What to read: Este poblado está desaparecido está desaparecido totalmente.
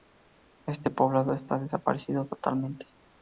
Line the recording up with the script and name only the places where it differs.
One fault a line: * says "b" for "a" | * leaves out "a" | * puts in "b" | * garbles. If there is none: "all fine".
* leaves out "está desaparecido"